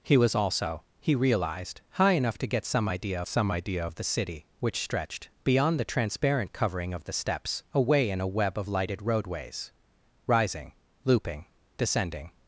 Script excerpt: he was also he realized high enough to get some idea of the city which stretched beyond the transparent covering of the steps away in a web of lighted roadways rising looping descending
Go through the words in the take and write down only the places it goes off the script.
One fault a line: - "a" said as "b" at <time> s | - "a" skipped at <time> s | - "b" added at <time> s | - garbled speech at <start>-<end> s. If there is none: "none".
- "some idea" added at 3.3 s